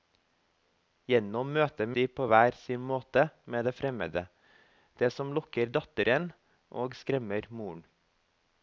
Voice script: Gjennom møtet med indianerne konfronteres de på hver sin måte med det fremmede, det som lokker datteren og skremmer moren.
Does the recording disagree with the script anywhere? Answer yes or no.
yes